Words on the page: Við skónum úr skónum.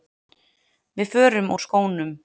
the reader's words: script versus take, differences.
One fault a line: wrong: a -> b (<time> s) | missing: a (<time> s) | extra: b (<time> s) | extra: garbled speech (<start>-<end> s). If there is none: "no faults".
wrong: skónum -> förum (1.1 s)